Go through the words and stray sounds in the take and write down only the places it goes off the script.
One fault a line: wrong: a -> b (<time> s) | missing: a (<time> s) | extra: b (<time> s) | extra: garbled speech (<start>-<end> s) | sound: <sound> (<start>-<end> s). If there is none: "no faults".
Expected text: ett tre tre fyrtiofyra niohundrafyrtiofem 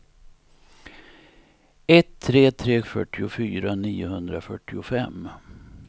no faults